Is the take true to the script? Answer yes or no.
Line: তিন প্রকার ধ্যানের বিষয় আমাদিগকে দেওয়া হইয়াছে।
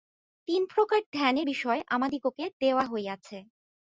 yes